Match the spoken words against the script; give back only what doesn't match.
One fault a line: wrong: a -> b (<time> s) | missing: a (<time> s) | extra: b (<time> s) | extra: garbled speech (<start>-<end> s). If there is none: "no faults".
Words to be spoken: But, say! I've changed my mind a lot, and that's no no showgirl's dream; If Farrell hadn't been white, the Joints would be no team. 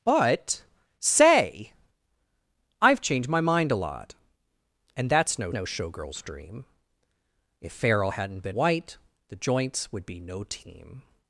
no faults